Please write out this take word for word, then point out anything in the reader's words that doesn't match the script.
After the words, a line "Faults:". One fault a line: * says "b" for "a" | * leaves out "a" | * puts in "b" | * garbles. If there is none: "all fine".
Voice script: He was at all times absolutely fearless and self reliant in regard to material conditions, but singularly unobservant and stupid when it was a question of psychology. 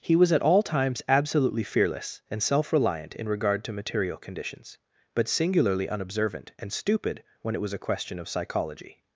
He was at all times absolutely fearless and self reliant in regard to material conditions, but singularly unobservant and stupid when it was a question of psychology.
Faults:
all fine